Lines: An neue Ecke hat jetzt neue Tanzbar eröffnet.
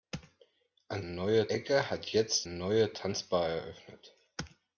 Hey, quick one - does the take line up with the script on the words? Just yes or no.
yes